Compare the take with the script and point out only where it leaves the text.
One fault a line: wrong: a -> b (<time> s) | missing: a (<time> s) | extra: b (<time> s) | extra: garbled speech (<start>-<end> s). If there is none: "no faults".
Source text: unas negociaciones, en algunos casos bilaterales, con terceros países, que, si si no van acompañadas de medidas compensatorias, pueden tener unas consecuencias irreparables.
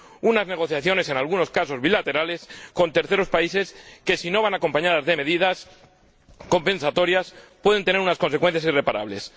missing: si (4.3 s)